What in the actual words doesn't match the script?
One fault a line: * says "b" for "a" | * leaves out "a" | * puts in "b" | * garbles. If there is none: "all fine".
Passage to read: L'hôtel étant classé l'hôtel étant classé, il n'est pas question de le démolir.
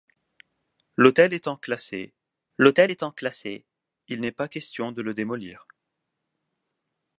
all fine